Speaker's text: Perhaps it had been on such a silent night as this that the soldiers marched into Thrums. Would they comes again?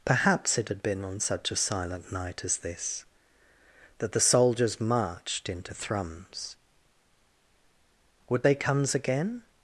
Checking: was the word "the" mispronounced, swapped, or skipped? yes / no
no